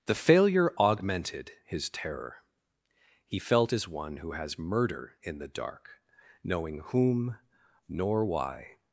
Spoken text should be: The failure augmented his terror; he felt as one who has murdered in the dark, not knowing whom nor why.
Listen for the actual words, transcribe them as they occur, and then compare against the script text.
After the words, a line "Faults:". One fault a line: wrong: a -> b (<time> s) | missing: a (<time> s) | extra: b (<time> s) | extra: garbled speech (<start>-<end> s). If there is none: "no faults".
The failure augmented his terror; he felt as one who has murder in the dark, knowing whom nor why.
Faults:
wrong: murdered -> murder (4.6 s)
missing: not (6.0 s)